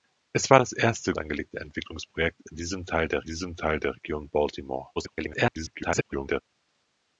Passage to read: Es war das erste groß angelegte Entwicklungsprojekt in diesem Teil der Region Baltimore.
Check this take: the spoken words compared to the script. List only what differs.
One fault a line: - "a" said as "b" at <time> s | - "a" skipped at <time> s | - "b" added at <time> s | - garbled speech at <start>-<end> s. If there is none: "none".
- "groß" skipped at 1.1 s
- "diesem Teil der" added at 3.3 s
- garbled speech at 5.0-6.4 s